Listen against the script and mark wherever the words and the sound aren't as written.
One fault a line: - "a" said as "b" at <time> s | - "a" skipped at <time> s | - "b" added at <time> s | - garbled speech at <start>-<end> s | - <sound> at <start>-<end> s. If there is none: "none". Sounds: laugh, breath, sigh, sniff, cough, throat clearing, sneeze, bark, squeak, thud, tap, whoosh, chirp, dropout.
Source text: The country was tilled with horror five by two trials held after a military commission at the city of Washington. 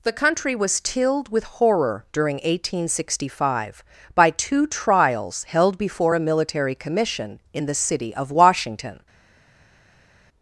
- "during eighteen sixty" added at 2.1 s
- "after" said as "before" at 5.8 s
- "at" said as "in" at 7.5 s